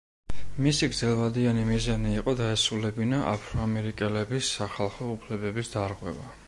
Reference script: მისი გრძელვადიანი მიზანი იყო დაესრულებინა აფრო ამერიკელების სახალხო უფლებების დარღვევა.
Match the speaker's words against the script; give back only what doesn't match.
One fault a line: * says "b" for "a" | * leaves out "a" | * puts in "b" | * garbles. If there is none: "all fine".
all fine